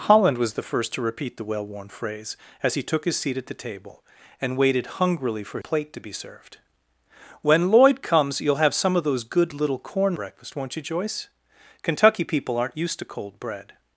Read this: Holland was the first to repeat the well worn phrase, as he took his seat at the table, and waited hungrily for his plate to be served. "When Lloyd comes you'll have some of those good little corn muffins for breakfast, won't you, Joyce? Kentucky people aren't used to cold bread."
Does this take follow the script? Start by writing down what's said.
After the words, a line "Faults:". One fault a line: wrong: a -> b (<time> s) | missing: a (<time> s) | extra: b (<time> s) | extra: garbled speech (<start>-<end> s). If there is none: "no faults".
Holland was the first to repeat the well worn phrase, as he took his seat at the table, and waited hungrily for plate to be served. "When Lloyd comes you'll have some of those good little corn breakfast, won't you, Joyce? Kentucky people aren't used to cold bread."
Faults:
missing: his (5.6 s)
missing: muffins for (10.2 s)